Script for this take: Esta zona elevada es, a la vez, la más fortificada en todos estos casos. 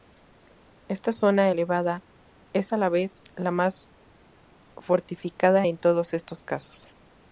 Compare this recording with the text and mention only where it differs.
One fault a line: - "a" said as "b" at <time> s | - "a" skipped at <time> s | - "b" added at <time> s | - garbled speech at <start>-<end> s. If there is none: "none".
none